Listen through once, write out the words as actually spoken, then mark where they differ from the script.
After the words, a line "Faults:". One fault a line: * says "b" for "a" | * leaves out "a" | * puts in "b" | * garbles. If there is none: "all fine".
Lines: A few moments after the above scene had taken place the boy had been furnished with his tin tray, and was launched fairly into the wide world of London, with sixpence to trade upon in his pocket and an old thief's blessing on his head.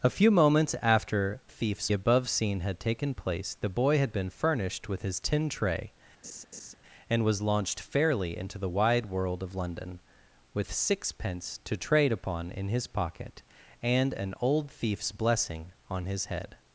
A few moments after thief's above scene had taken place the boy had been furnished with his tin tray, and was launched fairly into the wide world of London, with sixpence to trade upon in his pocket and an old thief's blessing on his head.
Faults:
* says "thief's" for "the"